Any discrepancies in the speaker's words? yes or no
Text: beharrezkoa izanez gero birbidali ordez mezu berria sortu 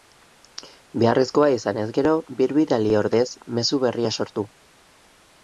no